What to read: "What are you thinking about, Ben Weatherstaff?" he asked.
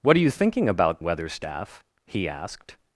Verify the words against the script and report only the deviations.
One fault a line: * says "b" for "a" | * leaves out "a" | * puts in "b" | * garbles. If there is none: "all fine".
* leaves out "Ben"